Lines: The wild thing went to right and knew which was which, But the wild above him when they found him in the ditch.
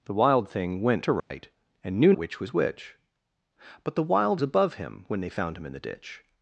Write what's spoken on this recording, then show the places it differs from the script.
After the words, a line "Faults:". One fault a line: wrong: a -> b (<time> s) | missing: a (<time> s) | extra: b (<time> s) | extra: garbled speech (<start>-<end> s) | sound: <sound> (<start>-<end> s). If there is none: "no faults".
The wild thing went to right and knew which was which, But the wild above him when they found him in the ditch.
Faults:
sound: dropout (1.2-1.3 s)